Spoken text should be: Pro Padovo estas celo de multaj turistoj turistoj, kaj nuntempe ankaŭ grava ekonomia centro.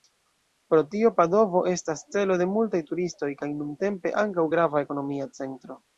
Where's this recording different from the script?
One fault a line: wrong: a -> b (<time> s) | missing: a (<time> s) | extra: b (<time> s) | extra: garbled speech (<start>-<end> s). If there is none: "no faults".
extra: tio (0.9 s)
missing: turistoj (3.3 s)